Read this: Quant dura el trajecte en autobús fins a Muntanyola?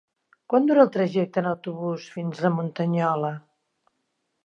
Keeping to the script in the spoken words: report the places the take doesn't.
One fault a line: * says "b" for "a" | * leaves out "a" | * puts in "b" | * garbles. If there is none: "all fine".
all fine